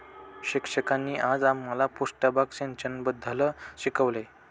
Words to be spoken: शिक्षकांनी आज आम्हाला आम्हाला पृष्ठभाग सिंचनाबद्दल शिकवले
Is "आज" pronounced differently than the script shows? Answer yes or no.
no